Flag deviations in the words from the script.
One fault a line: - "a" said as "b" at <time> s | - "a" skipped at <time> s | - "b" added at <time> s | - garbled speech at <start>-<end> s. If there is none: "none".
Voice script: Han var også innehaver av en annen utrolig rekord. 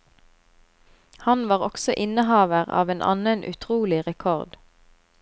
none